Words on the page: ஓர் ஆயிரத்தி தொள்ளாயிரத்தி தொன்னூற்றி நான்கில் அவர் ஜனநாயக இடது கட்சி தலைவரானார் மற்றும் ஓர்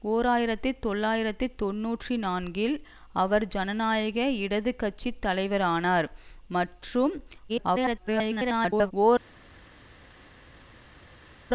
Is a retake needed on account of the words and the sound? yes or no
yes